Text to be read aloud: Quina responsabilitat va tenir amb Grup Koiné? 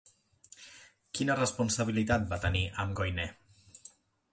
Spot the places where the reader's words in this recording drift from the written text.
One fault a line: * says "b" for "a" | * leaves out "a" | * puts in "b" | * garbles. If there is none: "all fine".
* leaves out "Grup"